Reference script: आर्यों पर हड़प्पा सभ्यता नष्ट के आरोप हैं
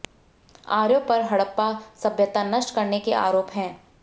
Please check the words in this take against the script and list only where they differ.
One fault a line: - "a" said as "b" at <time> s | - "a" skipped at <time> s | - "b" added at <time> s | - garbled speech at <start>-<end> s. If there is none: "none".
- "करने" added at 2.8 s